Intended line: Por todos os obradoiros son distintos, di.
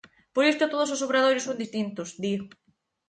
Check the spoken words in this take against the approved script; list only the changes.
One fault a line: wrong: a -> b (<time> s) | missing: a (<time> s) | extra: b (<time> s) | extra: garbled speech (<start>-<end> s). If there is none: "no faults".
extra: isto (0.5 s)